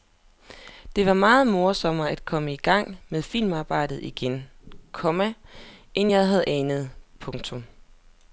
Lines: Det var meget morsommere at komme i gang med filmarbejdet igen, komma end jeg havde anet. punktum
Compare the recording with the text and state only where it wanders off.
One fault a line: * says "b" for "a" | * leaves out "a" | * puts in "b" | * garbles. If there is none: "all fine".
all fine